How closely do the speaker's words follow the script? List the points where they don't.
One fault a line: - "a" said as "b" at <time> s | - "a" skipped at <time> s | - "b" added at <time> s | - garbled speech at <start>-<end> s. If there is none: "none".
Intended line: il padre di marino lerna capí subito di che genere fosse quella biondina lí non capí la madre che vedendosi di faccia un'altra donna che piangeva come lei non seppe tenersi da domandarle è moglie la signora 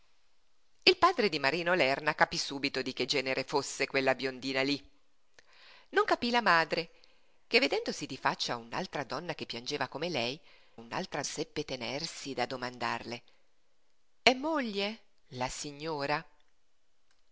- "non" said as "un'altra" at 10.7 s